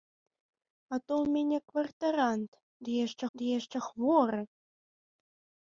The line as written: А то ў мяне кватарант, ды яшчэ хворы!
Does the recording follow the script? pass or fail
fail